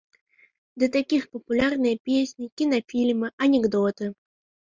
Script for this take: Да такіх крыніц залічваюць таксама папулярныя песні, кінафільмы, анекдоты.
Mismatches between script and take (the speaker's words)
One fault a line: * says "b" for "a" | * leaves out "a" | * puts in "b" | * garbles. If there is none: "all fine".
* leaves out "крыніц залічваюць таксама"